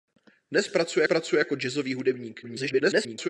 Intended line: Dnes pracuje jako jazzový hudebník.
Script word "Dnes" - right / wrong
right